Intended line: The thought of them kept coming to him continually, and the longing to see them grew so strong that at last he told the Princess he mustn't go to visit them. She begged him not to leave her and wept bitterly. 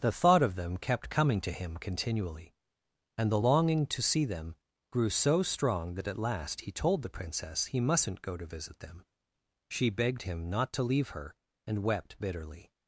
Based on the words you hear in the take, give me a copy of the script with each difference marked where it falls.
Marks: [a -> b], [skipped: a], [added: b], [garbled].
The thought of them kept coming to him continually, and the longing to see them grew so strong that at last he told the Princess he mustn't go to visit them. She begged him not to leave her and wept bitterly.